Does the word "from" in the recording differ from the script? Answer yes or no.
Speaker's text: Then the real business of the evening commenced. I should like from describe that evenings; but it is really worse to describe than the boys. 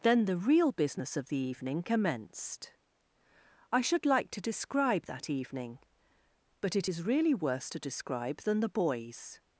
yes